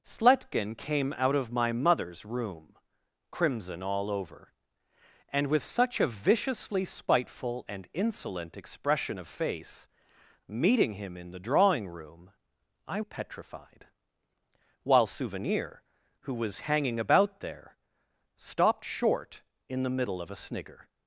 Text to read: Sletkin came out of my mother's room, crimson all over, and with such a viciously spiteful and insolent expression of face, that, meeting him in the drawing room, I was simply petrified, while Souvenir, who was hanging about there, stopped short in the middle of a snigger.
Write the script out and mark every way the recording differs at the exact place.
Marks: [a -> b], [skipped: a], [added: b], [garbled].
Sletkin came out of my mother's room, crimson all over, and with such a viciously spiteful and insolent expression of face, [skipped: that,] meeting him in the drawing room, I [skipped: was simply] petrified, while Souvenir, who was hanging about there, stopped short in the middle of a snigger.